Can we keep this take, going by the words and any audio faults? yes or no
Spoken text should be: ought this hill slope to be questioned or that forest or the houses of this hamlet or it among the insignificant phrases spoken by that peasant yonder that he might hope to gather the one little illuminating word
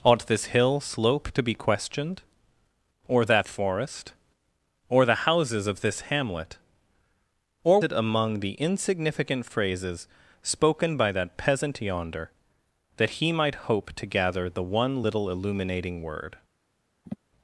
no